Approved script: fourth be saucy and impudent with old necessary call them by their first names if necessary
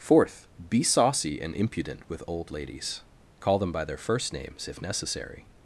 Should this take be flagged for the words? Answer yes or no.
yes